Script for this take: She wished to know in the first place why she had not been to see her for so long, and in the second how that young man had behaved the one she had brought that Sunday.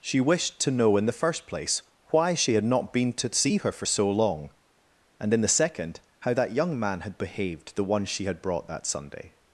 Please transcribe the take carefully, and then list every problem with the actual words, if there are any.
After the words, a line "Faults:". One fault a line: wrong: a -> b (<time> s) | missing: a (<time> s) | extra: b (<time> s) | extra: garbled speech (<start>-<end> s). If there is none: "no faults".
She wished to know in the first place why she had not been to see her for so long, and in the second how that young man had behaved the one she had brought that Sunday.
Faults:
no faults